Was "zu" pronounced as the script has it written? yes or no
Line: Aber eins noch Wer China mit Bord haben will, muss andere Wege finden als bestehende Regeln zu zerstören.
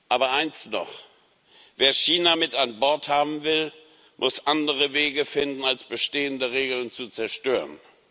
yes